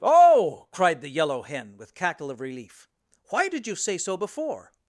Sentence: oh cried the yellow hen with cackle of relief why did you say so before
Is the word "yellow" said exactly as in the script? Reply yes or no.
yes